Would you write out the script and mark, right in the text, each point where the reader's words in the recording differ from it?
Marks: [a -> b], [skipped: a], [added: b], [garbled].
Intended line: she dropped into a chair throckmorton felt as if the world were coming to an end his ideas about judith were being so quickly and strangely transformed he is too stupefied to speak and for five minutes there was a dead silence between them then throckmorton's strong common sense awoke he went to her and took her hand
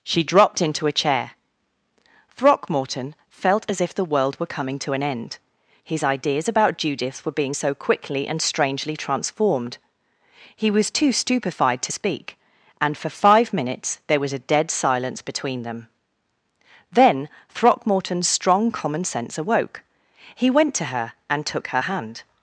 she dropped into a chair throckmorton felt as if the world were coming to an end his ideas about judith were being so quickly and strangely transformed he [is -> was] too stupefied to speak and for five minutes there was a dead silence between them then throckmorton's strong common sense awoke he went to her and took her hand